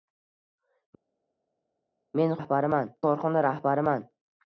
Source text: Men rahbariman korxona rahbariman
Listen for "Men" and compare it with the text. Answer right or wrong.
right